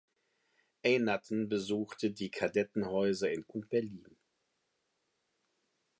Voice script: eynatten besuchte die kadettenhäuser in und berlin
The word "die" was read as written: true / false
true